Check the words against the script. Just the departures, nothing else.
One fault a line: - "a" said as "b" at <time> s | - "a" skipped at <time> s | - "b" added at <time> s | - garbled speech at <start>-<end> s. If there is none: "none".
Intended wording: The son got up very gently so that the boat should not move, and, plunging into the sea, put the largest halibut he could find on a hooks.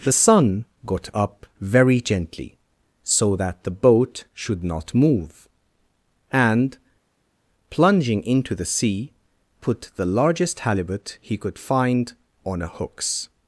none